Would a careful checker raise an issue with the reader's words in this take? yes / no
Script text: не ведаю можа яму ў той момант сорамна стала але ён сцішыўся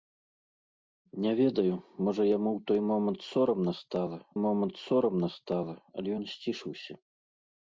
yes